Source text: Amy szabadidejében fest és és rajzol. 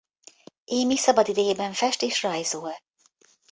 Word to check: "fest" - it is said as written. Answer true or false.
true